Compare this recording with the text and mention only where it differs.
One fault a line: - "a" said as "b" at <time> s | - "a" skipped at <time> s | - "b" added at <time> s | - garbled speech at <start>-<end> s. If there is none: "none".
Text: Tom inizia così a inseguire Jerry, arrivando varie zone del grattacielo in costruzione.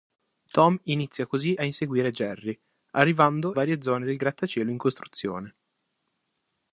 none